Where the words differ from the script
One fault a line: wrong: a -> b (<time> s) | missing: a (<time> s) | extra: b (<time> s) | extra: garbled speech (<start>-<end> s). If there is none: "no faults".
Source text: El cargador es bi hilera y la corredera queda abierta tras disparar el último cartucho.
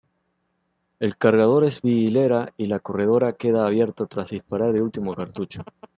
no faults